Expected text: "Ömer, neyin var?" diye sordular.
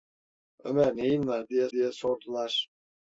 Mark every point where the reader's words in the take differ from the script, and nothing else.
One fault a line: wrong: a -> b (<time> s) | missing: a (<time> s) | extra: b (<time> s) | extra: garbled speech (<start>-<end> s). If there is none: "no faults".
extra: diye (1.7 s)